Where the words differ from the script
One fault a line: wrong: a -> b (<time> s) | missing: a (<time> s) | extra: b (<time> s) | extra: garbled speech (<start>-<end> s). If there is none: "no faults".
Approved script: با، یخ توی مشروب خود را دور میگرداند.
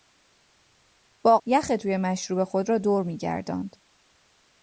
no faults